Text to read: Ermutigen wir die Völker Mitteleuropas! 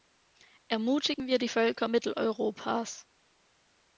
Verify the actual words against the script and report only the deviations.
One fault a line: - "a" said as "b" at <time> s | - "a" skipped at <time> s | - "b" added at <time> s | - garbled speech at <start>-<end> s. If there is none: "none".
none